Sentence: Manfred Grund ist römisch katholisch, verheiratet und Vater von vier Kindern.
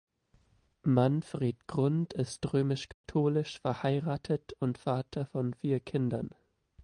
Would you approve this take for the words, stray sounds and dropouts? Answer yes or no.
no